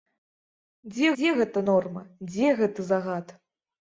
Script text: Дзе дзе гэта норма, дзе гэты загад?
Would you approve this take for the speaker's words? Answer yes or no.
yes